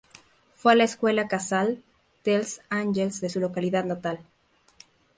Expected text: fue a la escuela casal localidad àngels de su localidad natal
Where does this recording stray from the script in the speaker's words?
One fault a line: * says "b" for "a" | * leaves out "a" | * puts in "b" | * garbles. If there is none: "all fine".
* says "dels" for "localidad"